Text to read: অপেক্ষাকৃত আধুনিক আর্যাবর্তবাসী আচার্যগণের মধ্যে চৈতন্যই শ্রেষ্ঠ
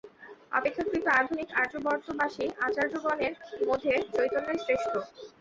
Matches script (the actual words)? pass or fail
pass